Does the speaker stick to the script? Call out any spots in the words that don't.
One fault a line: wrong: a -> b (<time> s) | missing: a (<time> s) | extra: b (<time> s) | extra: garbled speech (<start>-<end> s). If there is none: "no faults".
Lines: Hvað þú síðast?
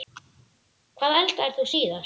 extra: eldaðir (1.2 s)